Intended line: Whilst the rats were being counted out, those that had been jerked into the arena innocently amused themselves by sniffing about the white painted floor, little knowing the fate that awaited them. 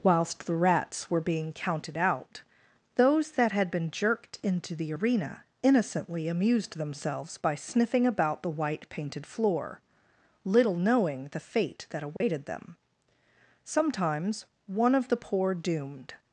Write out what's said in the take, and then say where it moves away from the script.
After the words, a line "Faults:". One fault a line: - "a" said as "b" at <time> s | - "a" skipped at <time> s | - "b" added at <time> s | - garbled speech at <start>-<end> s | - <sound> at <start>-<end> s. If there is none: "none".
Whilst the rats were being counted out, those that had been jerked into the arena innocently amused themselves by sniffing about the white painted floor, little knowing the fate that awaited them. Sometimes one of the poor doomed
Faults:
- dropout at 12.2-12.2 s
- "Sometimes one of the poor doomed" added at 13.6 s